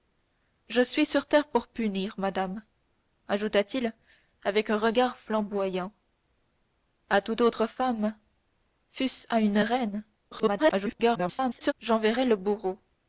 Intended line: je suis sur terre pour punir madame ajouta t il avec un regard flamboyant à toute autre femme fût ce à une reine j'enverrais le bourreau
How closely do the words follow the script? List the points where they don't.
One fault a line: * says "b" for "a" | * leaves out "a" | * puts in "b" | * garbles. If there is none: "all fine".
* garbles